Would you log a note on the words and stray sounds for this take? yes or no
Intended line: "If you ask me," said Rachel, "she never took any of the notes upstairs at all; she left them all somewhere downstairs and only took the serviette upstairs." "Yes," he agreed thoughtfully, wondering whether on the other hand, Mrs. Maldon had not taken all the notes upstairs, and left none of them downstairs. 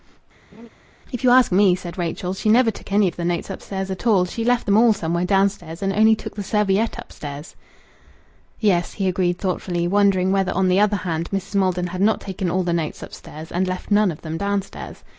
yes